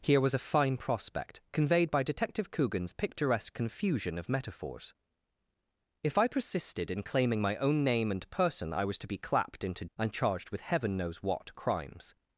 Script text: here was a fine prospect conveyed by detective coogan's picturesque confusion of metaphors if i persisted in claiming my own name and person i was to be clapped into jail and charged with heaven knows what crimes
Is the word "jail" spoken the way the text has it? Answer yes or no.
no